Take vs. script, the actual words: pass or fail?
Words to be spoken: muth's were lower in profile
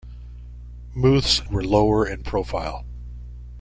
pass